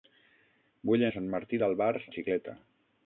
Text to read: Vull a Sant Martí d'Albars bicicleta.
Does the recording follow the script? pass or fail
pass